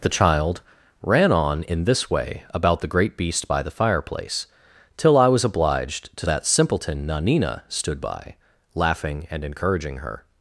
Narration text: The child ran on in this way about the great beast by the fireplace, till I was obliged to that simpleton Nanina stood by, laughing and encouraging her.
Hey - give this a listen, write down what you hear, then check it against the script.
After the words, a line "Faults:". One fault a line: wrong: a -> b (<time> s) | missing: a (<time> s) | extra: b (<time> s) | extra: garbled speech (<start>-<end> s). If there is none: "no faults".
The child ran on in this way about the great beast by the fireplace, till I was obliged to that simpleton Nanina stood by, laughing and encouraging her.
Faults:
no faults